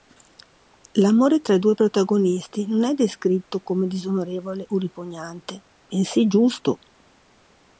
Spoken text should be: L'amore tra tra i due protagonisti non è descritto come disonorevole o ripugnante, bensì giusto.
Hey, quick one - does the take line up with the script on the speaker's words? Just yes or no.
no